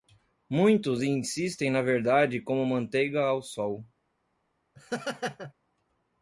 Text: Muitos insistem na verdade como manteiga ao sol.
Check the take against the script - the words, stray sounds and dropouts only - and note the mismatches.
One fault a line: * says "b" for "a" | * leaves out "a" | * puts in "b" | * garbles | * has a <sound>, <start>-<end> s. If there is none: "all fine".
* has a laugh, 4.8-5.5 s